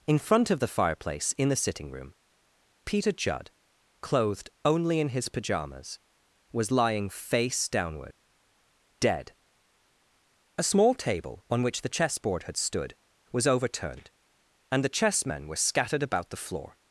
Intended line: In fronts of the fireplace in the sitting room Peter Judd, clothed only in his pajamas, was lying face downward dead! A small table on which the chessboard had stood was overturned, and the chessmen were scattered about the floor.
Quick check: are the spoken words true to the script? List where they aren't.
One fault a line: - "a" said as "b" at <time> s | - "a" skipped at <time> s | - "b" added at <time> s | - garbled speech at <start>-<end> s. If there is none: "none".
- "fronts" said as "front" at 0.2 s